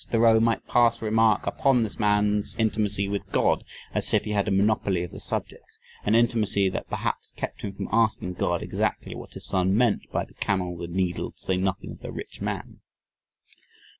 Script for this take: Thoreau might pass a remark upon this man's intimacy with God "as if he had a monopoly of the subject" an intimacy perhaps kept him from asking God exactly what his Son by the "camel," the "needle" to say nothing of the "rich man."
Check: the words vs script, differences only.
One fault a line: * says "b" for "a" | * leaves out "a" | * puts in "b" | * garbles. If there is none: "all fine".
* puts in "that"
* puts in "meant"